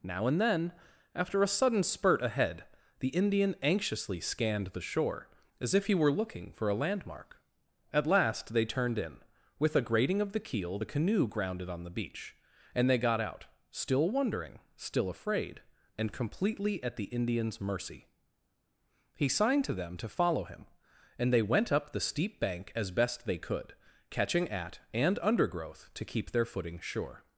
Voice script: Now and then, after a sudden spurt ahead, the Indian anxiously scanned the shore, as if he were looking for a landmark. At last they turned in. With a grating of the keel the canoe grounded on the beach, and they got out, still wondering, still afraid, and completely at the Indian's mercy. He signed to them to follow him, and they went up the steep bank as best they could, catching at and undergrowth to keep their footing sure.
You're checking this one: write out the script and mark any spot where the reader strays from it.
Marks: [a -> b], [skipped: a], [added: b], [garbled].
Now and then, after a sudden spurt ahead, the Indian anxiously scanned the shore, as if he were looking for a landmark. At last they turned in. With a grating of the keel the canoe grounded on the beach, and they got out, still wondering, still afraid, and completely at the Indian's mercy. He signed to them to follow him, and they went up the steep bank as best they could, catching at and undergrowth to keep their footing sure.